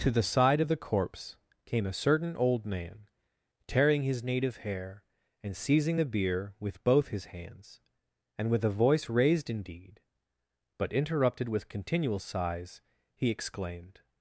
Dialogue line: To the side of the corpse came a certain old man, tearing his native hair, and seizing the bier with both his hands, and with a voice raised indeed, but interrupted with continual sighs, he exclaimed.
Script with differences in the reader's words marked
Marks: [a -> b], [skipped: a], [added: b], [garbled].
To the side of the corpse came a certain old man, tearing his native hair, and seizing the bier with both his hands, and with a voice raised indeed, but interrupted with continual sighs, he exclaimed.